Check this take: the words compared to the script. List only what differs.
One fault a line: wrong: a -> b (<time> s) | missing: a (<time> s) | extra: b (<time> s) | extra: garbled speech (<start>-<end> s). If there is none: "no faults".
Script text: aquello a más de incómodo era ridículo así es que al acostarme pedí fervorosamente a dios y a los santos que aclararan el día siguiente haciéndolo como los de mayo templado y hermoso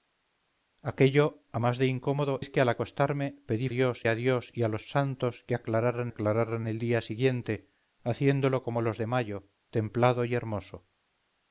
missing: era ridículo así (2.4 s)
wrong: fervorosamente -> dios (3.7 s)
extra: aclararan (6.1 s)